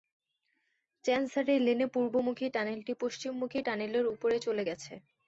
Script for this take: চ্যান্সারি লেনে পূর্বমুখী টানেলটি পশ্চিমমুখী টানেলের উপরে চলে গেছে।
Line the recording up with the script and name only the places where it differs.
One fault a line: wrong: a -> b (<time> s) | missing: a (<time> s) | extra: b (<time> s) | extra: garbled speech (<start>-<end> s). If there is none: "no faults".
no faults